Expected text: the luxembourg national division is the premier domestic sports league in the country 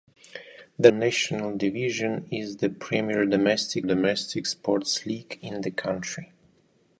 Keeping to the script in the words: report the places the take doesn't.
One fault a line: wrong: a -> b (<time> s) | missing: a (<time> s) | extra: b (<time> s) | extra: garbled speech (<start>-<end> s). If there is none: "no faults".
missing: luxembourg (0.9 s)
extra: domestic (3.8 s)